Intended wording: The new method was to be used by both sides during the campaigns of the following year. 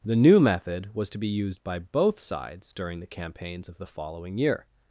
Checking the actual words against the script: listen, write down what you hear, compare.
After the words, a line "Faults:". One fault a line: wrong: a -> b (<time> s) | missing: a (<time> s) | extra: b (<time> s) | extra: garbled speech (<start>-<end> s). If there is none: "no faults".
The new method was to be used by both sides during the campaigns of the following year.
Faults:
no faults